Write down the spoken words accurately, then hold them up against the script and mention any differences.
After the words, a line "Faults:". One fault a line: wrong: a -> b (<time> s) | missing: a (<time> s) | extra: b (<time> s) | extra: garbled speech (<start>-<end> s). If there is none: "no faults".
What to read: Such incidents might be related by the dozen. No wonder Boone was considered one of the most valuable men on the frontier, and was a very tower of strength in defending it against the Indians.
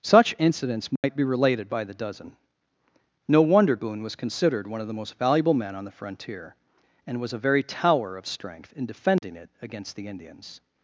Such incidents might be related by the dozen. No wonder Boone was considered one of the most valuable men on the frontier, and was a very tower of strength in defending it against the Indians.
Faults:
no faults